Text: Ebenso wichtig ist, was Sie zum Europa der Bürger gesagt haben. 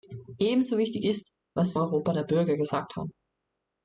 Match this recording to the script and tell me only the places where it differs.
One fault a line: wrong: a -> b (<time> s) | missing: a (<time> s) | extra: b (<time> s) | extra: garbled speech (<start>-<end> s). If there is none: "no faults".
missing: Sie zum (1.7 s)